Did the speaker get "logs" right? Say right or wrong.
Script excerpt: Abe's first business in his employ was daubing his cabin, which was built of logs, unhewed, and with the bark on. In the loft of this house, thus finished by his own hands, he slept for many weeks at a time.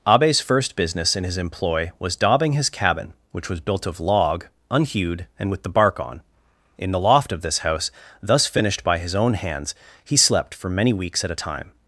wrong